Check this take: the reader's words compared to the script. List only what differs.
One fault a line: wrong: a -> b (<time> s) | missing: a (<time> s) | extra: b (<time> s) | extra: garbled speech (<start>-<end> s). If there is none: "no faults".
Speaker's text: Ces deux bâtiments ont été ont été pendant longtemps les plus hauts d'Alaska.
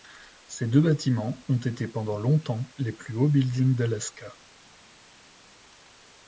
missing: ont été (1.9 s)
extra: buildings (3.3 s)